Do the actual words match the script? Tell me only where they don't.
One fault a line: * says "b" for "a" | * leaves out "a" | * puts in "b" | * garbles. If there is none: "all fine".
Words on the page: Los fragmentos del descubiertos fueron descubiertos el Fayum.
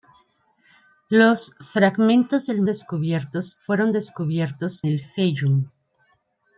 all fine